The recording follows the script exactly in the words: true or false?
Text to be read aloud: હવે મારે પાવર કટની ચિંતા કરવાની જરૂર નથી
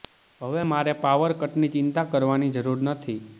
true